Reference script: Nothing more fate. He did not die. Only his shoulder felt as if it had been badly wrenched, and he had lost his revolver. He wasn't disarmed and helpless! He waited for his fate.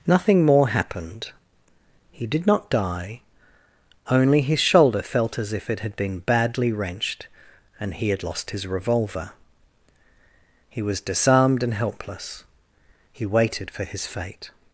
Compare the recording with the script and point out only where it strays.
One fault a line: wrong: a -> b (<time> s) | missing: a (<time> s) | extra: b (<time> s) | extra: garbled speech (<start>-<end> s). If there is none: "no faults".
wrong: fate -> happened (0.7 s)
wrong: wasn't -> was (10.8 s)